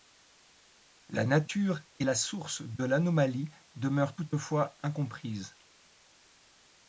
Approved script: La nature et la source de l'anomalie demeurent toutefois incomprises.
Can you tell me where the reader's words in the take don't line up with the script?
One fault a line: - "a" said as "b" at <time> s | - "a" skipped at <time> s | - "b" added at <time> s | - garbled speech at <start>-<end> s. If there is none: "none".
none